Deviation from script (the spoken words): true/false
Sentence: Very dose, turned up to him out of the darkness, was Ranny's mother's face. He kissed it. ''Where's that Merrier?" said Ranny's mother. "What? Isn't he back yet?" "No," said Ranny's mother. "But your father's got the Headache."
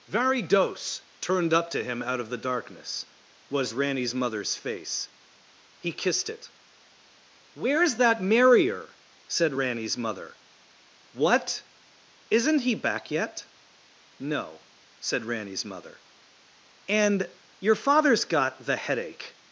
true